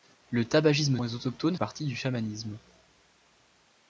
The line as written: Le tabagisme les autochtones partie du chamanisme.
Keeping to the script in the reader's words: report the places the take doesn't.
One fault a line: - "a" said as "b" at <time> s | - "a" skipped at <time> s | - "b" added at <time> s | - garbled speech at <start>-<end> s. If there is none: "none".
none